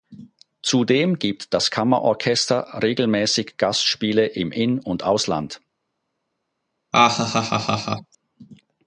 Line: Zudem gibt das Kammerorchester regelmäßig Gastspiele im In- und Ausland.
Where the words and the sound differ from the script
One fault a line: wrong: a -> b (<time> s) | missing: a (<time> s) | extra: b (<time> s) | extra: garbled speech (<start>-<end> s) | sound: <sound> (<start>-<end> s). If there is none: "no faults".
sound: laugh (6.9-8.2 s)